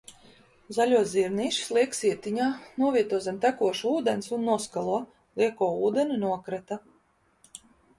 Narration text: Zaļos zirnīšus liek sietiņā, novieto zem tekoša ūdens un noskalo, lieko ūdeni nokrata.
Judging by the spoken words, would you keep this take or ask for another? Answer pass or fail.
pass